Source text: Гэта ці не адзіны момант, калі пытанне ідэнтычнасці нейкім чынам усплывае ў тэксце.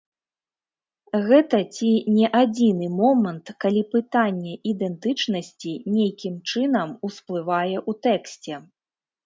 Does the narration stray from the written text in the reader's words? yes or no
no